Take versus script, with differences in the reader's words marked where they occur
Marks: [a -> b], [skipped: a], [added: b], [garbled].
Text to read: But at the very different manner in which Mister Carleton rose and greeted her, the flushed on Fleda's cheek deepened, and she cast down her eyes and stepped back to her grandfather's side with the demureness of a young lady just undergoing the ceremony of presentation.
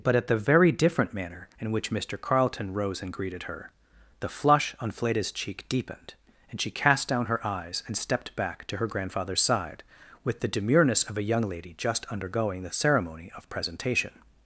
But at the very different manner in which Mister Carleton rose and greeted her, the [flushed -> flush] on Fleda's cheek deepened, and she cast down her eyes and stepped back to her grandfather's side with the demureness of a young lady just undergoing the ceremony of presentation.